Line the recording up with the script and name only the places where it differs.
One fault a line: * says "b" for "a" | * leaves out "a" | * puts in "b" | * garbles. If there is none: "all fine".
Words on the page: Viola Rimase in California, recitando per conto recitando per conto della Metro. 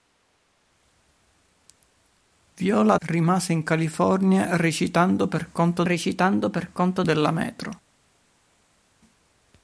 all fine